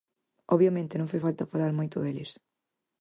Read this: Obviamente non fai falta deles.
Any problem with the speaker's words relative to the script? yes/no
yes